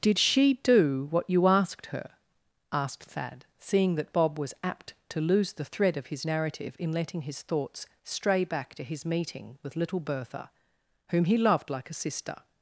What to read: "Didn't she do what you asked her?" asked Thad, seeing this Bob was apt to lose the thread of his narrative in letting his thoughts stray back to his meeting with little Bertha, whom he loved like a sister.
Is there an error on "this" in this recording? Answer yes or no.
yes